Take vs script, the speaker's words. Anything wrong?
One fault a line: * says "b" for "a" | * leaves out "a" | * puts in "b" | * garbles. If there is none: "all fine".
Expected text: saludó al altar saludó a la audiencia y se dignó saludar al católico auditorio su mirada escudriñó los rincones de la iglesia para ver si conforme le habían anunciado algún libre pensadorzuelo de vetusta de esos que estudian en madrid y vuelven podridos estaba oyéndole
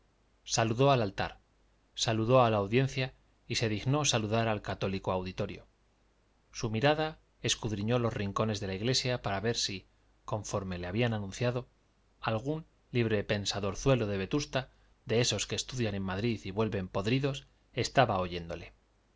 all fine